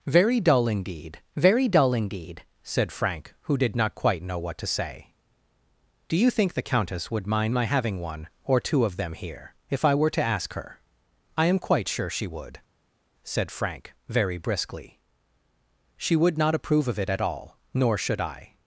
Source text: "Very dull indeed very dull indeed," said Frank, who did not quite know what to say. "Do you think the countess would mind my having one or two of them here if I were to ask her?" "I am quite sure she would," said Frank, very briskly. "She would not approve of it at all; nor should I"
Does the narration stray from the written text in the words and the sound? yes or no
no